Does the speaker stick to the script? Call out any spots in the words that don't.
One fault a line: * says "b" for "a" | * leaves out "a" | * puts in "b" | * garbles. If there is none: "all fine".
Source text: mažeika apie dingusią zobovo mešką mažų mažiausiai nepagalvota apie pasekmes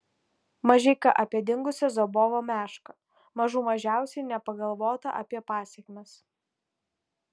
all fine